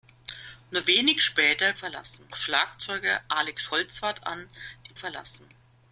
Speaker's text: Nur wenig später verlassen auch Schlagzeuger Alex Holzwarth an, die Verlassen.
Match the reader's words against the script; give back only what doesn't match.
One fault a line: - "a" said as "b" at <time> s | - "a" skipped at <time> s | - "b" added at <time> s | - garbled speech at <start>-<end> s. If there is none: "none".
none